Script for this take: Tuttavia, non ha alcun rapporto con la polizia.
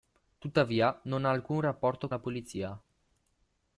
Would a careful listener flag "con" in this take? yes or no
yes